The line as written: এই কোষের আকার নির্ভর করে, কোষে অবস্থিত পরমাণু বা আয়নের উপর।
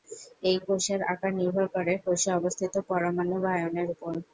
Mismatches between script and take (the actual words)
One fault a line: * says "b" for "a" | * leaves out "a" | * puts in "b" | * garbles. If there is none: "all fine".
all fine